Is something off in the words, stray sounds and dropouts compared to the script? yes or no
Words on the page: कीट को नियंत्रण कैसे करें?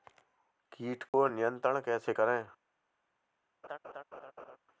yes